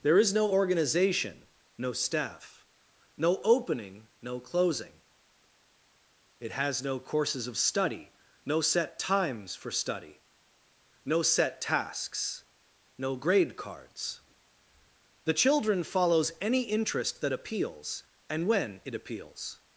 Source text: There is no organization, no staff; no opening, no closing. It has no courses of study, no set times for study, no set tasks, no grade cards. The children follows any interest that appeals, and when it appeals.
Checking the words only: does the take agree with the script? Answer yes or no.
yes